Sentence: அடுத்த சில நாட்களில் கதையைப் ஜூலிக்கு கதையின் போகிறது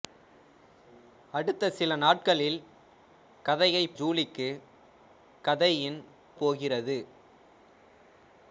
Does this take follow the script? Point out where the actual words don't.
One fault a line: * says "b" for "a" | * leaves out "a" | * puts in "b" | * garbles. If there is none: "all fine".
all fine